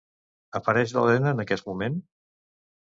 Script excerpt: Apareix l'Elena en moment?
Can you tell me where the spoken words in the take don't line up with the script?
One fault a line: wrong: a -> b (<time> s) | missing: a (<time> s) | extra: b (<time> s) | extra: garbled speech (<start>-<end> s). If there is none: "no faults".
extra: aquest (1.5 s)